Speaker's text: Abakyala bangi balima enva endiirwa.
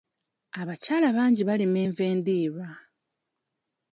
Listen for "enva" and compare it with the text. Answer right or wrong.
right